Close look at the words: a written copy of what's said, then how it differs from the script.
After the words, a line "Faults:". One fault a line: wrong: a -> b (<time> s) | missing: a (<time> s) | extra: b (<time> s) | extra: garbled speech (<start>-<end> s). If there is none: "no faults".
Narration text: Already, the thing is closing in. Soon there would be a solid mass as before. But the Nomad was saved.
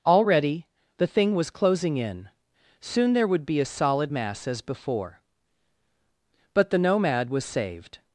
Already, the thing was closing in. Soon there would be a solid mass as before. But the Nomad was saved.
Faults:
wrong: is -> was (1.4 s)